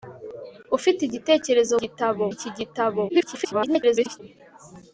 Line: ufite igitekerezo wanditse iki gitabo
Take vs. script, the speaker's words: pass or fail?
fail